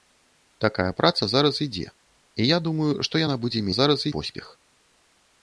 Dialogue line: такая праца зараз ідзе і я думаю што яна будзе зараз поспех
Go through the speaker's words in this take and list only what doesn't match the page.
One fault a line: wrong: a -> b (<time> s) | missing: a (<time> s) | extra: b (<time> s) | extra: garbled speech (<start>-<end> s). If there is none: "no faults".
no faults